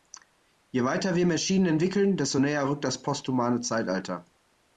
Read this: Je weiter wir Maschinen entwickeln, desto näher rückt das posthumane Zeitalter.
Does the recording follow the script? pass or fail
pass